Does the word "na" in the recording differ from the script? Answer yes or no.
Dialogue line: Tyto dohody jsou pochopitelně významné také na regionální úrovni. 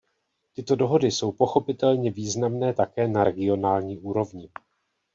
no